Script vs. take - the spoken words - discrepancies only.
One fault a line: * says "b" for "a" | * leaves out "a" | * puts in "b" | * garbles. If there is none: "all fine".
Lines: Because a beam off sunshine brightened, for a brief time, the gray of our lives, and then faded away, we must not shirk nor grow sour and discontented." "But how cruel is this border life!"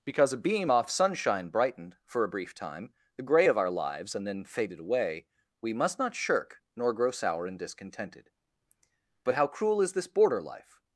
all fine